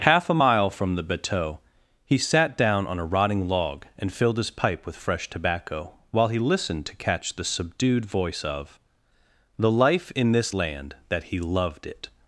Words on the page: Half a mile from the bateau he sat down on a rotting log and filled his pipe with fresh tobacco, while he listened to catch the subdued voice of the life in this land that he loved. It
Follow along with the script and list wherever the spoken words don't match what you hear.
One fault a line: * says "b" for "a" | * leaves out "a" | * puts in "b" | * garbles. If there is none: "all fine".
all fine